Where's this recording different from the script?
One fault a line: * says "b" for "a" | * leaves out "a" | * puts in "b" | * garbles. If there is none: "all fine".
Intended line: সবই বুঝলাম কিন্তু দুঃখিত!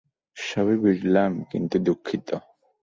all fine